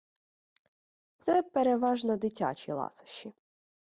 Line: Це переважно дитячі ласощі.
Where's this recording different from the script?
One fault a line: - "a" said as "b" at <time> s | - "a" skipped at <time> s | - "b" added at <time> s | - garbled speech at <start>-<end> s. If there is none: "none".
none